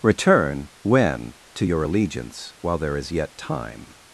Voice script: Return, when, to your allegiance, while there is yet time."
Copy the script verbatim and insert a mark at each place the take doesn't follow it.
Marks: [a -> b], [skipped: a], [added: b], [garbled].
Return, when, to your allegiance, while there is yet time."